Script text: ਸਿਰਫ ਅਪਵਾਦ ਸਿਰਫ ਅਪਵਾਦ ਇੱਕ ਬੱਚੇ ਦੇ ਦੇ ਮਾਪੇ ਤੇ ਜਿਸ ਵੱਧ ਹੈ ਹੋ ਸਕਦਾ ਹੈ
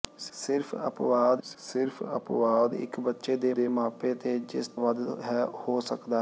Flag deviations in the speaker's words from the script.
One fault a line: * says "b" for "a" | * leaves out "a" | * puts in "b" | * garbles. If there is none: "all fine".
all fine